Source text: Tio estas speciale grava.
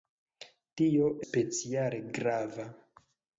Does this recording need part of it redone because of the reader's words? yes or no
yes